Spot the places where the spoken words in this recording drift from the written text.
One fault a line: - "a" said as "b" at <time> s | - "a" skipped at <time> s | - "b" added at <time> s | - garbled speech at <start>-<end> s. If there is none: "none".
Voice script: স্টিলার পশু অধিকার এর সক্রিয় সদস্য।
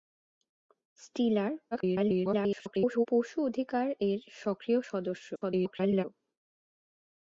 - garbled speech at 1.7-3.1 s
- garbled speech at 5.3-6.1 s